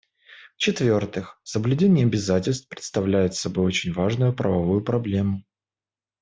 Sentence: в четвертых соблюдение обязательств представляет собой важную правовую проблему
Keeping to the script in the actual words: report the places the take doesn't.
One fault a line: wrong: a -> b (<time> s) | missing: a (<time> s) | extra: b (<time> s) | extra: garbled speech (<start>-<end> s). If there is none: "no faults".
extra: очень (3.7 s)